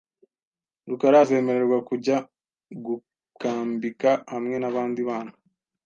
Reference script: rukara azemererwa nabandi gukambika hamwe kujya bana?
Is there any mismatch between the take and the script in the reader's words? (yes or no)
yes